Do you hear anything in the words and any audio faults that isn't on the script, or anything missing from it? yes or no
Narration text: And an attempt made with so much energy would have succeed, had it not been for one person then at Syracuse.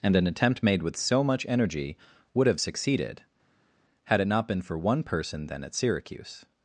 yes